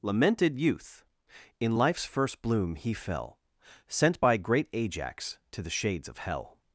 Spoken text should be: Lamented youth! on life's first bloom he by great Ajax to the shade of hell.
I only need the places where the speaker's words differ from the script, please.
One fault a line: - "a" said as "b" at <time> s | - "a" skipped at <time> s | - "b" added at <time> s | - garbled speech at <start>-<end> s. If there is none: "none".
- "on" said as "in" at 1.6 s
- "fell Sent" added at 2.9 s
- "shade" said as "shades" at 5.7 s